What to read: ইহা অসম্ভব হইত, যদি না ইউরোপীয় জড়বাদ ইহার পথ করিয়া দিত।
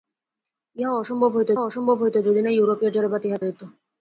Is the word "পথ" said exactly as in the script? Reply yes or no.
no